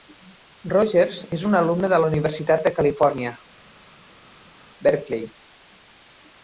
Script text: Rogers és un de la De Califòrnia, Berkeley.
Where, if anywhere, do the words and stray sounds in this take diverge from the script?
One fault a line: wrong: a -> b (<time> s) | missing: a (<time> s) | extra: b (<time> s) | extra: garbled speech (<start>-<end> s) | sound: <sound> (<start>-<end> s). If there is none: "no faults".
extra: alumne (1.6 s)
extra: Universitat (2.1 s)